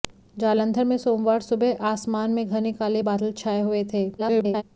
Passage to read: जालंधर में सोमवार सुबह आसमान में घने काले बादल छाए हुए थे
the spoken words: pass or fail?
fail